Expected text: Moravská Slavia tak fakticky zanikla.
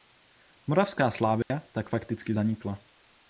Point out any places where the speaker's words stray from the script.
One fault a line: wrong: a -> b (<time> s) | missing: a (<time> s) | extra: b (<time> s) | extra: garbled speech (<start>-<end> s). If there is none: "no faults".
no faults